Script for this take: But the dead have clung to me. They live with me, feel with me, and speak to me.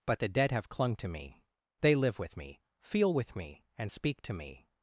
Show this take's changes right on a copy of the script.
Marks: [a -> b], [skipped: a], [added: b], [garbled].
But the dead have clung to me. They live with me, feel with me, and speak to me.